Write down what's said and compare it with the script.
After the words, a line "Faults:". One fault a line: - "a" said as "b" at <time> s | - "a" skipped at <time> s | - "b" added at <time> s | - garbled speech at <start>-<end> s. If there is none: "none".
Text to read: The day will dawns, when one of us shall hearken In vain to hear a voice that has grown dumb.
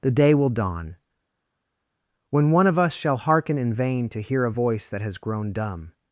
The day will dawn, when one of us shall hearken In vain to hear a voice that has grown dumb.
Faults:
- "dawns" said as "dawn" at 0.5 s